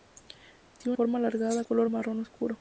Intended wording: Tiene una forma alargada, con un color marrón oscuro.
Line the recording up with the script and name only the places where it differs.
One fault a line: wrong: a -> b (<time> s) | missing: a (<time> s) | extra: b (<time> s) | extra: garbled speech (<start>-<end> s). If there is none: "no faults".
missing: una (1.0 s)
missing: con un (1.6 s)